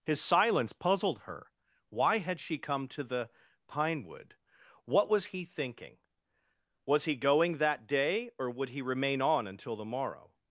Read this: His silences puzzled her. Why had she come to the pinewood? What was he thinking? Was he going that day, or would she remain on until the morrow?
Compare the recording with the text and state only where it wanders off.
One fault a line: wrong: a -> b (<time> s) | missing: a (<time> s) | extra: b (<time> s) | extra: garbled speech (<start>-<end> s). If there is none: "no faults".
wrong: silences -> silence (0.2 s)
wrong: she -> he (8.7 s)